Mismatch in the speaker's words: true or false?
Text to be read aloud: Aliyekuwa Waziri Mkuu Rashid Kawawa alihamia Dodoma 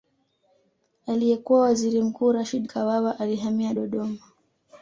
false